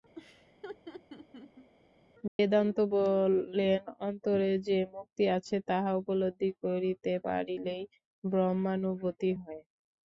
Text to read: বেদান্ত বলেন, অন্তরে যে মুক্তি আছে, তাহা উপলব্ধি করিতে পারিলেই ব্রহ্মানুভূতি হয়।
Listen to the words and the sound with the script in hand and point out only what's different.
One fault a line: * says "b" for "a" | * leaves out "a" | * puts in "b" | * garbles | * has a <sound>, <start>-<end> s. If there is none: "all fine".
* has a laugh, 0.2-1.7 s
* has a dropout, 2.3-2.4 s